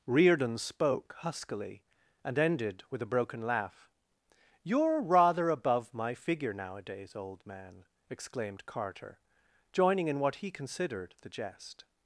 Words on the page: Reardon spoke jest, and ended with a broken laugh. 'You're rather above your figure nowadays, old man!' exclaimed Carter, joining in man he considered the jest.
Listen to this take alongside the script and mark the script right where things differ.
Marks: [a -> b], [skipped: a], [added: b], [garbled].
Reardon spoke [jest, -> huskily] and ended with a broken laugh. 'You're rather above [your -> my] figure nowadays, old man!' exclaimed Carter, joining in [man -> what] he considered the jest.